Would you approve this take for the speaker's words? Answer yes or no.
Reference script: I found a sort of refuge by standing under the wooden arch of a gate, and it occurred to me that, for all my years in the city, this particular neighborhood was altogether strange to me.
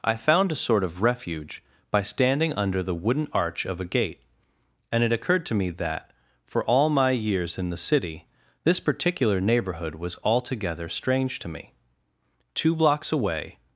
no